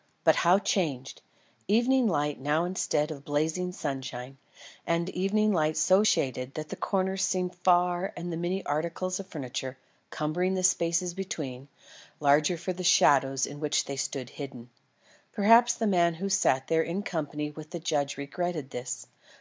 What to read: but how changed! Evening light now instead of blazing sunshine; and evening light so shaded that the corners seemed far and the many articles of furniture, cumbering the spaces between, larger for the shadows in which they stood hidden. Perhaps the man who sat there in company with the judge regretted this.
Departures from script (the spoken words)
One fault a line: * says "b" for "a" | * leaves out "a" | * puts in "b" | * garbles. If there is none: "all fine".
all fine